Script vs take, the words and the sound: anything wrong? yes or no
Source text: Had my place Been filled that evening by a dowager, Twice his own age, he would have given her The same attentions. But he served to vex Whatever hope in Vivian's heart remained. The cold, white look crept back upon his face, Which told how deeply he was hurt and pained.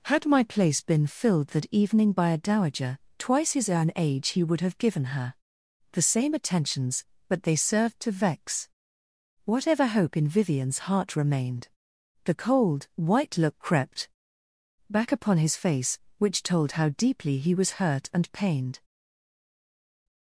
yes